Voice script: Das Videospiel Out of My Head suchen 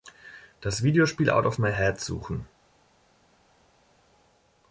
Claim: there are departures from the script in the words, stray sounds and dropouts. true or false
false